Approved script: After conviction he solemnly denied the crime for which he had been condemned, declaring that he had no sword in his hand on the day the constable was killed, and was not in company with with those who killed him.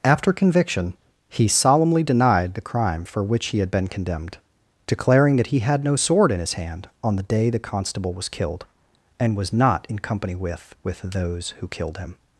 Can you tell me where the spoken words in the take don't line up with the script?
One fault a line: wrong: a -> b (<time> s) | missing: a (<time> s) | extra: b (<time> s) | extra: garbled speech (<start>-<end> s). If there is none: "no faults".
no faults